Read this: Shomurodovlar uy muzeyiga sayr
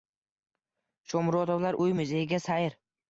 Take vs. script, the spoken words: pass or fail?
pass